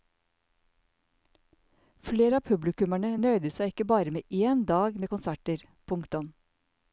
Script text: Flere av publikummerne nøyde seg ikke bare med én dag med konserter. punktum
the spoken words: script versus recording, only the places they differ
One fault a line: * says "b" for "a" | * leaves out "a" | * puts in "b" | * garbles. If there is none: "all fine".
all fine